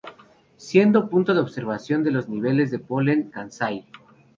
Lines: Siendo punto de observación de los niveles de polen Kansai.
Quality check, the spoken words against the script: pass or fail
pass